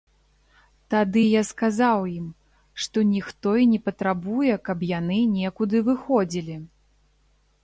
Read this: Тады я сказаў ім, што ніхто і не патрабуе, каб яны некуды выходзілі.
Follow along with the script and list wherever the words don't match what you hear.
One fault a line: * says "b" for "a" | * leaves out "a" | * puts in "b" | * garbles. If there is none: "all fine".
all fine